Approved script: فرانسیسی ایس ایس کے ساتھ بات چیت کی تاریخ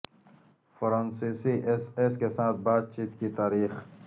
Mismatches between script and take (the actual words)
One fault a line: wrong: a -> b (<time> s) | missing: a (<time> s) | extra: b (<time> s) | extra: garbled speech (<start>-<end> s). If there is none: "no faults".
no faults